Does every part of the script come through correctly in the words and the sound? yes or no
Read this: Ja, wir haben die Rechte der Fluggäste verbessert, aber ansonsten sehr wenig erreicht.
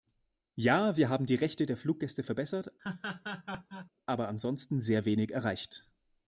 no